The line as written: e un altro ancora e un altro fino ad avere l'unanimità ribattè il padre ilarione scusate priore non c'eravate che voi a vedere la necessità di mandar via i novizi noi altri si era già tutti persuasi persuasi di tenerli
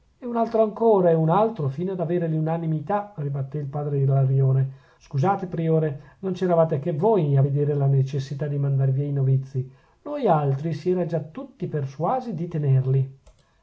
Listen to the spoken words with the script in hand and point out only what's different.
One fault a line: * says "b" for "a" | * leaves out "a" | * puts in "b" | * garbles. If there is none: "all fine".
* leaves out "persuasi"